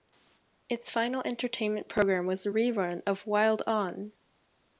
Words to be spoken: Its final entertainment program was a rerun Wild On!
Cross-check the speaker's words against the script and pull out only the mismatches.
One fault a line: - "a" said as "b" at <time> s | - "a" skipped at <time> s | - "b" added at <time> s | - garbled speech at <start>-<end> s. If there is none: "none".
- "of" added at 3.0 s